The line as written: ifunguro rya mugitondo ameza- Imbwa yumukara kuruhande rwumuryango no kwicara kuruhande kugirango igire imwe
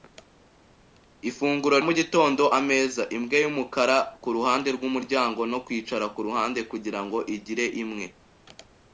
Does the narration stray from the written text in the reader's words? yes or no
yes